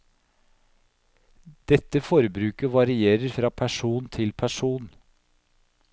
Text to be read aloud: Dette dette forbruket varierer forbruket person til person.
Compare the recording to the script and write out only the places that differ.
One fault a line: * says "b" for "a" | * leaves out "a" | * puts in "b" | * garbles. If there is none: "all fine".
* leaves out "dette"
* says "fra" for "forbruket"